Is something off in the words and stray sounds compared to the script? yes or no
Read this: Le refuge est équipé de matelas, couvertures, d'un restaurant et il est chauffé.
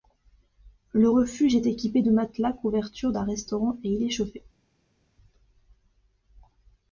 no